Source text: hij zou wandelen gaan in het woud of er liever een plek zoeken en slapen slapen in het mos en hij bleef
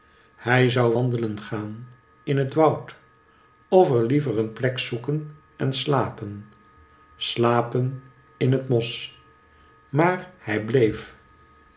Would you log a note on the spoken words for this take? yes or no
yes